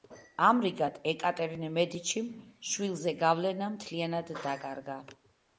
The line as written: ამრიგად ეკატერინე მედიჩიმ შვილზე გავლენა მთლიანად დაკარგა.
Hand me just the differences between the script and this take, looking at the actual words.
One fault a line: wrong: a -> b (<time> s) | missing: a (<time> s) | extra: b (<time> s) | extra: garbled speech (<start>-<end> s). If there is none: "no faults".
no faults